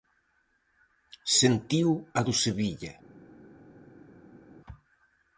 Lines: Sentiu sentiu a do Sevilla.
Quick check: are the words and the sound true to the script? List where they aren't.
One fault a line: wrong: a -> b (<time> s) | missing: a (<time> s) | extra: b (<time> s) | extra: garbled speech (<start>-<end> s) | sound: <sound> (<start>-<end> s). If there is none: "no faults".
missing: sentiu (1.9 s)